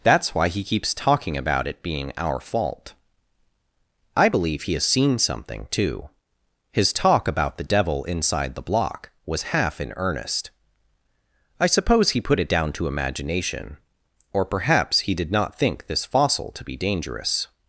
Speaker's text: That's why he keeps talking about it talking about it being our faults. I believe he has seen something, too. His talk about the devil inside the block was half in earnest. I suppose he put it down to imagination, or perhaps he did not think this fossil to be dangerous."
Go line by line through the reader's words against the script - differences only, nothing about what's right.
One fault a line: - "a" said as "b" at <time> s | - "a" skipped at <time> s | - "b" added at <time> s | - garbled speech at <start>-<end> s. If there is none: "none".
- "talking about it" skipped at 1.8 s
- "faults" said as "fault" at 2.4 s